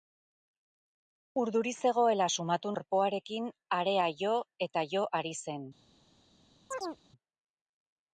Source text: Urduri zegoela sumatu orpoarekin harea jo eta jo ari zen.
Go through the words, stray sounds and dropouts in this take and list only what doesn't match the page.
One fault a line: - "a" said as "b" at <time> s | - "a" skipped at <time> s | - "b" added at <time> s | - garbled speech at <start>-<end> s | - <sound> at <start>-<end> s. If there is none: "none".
- chirp at 6.7-7.0 s